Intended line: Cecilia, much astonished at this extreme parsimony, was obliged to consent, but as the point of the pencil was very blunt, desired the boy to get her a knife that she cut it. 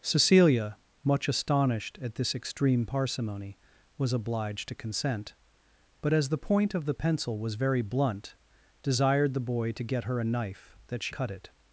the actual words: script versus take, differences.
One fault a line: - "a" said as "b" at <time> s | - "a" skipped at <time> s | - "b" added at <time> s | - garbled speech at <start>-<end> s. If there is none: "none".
none